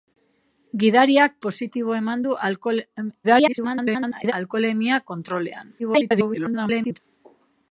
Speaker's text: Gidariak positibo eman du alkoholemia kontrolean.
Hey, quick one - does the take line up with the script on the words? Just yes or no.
no